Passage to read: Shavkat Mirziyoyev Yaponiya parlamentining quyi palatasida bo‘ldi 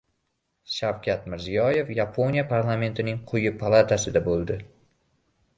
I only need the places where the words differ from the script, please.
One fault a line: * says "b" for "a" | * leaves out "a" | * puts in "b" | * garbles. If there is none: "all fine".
all fine